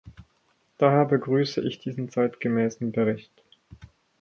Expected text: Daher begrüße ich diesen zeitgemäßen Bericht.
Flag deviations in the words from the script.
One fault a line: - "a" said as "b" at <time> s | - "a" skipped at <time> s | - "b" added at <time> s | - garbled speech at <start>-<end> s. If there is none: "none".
none